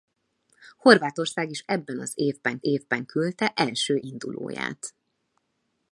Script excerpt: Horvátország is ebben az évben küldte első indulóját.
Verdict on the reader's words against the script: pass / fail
fail